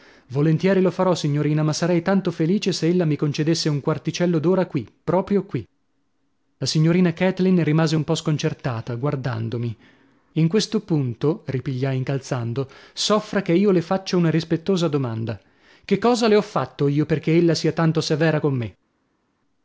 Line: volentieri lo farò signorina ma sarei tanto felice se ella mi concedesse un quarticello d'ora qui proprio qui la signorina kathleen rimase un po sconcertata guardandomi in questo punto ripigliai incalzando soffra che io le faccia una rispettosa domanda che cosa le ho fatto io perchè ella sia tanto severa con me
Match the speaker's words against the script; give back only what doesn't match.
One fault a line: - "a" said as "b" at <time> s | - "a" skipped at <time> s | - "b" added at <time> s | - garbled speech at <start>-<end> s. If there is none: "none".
none